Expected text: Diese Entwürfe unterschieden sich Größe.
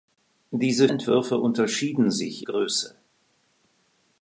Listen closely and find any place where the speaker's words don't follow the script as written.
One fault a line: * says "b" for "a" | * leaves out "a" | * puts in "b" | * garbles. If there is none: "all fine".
all fine